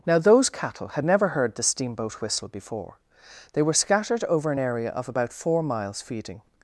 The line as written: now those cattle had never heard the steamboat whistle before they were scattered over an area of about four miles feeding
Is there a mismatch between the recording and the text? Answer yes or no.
no